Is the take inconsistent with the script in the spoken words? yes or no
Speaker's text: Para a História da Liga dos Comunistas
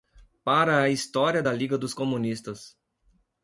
no